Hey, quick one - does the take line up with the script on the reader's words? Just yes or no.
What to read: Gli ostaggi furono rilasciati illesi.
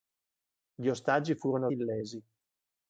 no